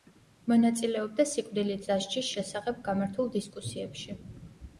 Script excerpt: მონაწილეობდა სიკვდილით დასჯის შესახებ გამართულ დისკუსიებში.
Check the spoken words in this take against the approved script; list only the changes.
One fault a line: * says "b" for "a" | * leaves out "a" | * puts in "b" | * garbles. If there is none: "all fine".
all fine